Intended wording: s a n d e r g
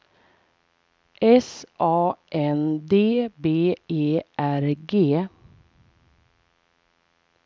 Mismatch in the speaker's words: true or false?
true